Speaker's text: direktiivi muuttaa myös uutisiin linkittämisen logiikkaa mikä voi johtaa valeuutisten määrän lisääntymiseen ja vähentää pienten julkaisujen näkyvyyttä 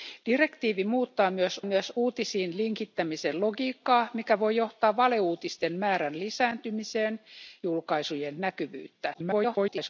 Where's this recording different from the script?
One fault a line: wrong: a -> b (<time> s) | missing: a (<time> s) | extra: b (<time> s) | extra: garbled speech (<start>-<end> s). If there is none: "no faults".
extra: myös (1.6 s)
missing: ja vähentää pienten (7.2 s)
extra: garbled speech (9.1-9.9 s)